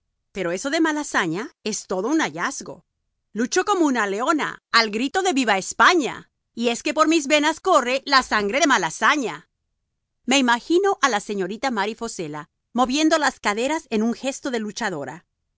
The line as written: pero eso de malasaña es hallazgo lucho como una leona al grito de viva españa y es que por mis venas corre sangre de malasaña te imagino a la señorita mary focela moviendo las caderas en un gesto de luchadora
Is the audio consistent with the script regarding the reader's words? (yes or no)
no